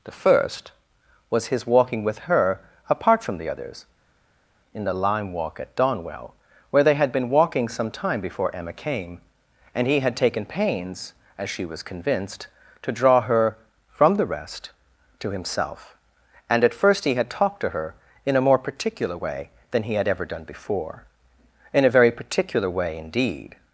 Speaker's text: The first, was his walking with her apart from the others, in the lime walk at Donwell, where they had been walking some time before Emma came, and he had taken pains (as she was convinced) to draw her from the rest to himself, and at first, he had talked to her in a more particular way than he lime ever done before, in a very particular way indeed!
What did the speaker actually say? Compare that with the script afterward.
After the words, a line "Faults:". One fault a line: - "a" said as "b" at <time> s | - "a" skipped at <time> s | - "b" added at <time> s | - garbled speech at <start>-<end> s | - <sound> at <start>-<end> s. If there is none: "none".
The first, was his walking with her apart from the others, in the lime walk at Donwell, where they had been walking some time before Emma came, and he had taken pains (as she was convinced) to draw her from the rest to himself, and at first, he had talked to her in a more particular way than he had ever done before, in a very particular way indeed!
Faults:
- "lime" said as "had" at 19.9 s